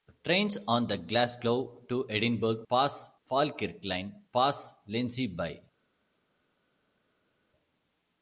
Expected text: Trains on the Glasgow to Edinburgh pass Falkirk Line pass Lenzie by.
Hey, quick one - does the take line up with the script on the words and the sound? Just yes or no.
yes